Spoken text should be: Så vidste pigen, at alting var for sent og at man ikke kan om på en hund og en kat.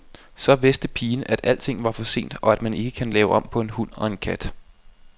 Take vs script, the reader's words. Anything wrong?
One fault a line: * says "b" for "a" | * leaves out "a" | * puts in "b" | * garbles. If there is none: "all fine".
* puts in "lave"